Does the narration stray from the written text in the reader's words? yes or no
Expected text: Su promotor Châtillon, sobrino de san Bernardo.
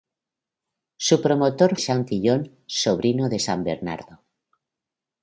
no